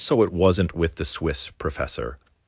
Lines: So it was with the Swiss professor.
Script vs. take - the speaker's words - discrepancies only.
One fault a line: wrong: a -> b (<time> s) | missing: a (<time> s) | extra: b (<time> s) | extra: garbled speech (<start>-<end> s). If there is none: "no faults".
wrong: was -> wasn't (0.3 s)